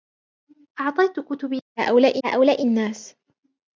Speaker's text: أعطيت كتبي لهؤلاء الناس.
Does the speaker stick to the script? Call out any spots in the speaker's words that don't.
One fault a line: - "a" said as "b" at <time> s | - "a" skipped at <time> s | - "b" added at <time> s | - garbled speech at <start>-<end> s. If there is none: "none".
- "لهؤلاء" added at 2.3 s